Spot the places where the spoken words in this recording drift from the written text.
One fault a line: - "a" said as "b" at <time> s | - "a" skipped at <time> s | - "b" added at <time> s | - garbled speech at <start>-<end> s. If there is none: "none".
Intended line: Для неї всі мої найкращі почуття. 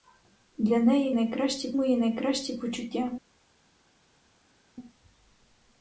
- "всі" said as "найкращі" at 1.1 s